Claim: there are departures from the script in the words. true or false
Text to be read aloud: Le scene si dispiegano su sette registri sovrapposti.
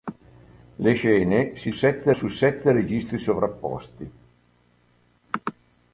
true